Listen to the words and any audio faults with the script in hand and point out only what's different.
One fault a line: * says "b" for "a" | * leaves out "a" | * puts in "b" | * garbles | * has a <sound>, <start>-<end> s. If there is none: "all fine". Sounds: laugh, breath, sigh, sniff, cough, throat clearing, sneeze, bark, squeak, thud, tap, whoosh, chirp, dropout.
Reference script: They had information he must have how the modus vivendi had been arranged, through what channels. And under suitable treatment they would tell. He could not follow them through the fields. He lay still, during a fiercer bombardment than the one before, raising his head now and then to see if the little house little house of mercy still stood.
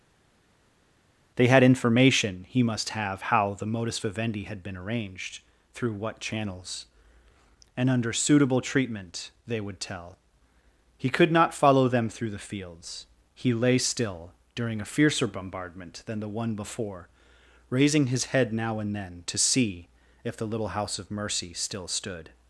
* leaves out "little house"